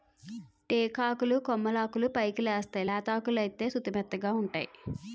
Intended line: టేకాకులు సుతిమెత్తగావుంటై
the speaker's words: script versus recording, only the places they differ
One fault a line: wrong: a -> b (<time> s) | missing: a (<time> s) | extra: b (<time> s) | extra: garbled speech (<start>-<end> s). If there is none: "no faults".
extra: కొమ్మలాకులు పైకెలేస్తేయ్ లేతాకులైతే (1.4 s)